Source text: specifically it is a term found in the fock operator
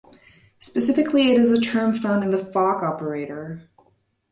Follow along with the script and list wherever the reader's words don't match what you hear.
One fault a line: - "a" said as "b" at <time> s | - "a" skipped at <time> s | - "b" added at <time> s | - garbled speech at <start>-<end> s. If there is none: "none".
none